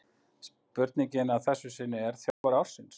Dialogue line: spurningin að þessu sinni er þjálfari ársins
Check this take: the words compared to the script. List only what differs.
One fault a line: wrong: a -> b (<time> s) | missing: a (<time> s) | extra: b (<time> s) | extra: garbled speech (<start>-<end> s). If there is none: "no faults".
no faults